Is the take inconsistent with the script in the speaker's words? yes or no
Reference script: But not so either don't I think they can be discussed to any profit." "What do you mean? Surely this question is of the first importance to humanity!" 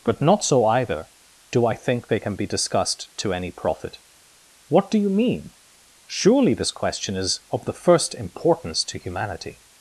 yes